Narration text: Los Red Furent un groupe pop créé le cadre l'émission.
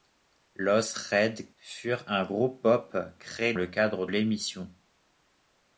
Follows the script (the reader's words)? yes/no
yes